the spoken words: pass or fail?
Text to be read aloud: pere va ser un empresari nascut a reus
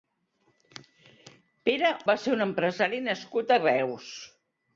pass